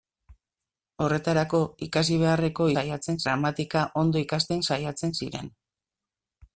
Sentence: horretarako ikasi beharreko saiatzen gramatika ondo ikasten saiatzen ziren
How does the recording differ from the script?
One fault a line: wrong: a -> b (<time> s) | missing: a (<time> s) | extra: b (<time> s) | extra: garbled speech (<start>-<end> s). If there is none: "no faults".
no faults